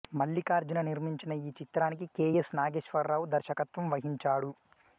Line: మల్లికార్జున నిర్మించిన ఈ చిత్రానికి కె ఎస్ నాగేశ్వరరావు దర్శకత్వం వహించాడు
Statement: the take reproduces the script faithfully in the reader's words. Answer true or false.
true